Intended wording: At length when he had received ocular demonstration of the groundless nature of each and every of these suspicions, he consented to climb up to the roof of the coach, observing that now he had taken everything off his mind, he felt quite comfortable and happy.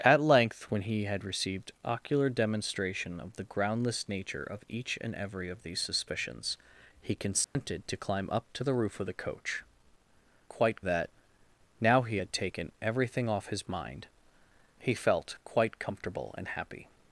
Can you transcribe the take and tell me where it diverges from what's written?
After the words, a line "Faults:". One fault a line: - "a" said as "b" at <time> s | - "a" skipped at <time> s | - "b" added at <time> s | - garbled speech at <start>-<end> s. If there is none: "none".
At length when he had received ocular demonstration of the groundless nature of each and every of these suspicions, he consented to climb up to the roof of the coach, quite that now he had taken everything off his mind, he felt quite comfortable and happy.
Faults:
- "observing" said as "quite" at 10.5 s